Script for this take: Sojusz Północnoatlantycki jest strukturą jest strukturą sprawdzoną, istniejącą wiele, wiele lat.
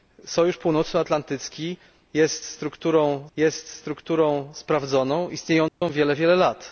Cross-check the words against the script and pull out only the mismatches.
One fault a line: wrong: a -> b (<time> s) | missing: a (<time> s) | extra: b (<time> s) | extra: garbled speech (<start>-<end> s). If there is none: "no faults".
no faults